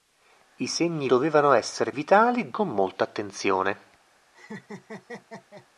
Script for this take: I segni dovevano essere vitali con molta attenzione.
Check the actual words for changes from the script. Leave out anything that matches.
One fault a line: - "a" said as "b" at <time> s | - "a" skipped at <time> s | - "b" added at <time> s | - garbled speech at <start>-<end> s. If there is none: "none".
none